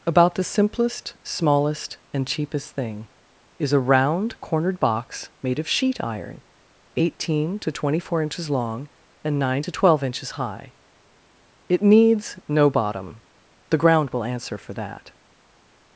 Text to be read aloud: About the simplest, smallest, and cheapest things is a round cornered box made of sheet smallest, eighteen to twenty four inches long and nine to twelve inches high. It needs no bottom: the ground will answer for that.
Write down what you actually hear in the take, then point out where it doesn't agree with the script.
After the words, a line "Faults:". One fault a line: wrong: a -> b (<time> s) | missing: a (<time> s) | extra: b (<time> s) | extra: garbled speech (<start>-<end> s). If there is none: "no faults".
About the simplest, smallest, and cheapest thing is a round cornered box made of sheet iron, eighteen to twenty four inches long and nine to twelve inches high. It needs no bottom: the ground will answer for that.
Faults:
wrong: things -> thing (2.7 s)
wrong: smallest -> iron (6.0 s)